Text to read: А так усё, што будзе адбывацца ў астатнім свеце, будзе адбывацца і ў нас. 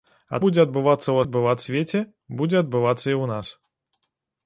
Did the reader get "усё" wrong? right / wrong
wrong